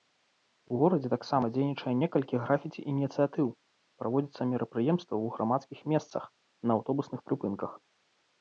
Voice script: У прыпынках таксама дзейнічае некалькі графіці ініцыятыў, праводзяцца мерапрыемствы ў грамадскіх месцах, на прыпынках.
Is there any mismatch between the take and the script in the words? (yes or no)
yes